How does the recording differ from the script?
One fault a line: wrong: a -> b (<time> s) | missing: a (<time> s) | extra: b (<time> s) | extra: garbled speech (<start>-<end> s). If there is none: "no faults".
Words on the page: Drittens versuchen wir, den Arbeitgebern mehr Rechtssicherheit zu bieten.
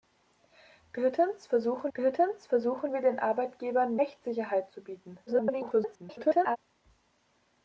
extra: drittens versuchen (1.9 s)
missing: mehr (4.0 s)
extra: garbled speech (5.3-6.6 s)